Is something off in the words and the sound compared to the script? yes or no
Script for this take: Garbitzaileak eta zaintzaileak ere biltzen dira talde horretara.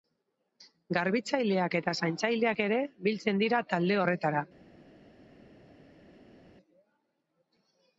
no